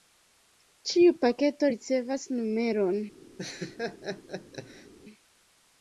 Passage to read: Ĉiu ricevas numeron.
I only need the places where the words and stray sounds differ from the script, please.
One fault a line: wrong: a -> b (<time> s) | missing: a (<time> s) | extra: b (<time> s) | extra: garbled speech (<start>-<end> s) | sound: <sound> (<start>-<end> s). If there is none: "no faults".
extra: paketo (1.2 s)
sound: laugh (3.4-4.9 s)